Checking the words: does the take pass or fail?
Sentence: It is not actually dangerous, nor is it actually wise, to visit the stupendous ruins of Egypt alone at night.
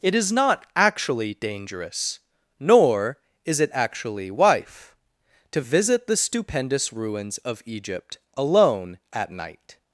fail